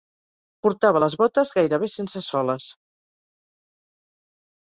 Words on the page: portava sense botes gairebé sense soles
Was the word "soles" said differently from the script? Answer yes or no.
no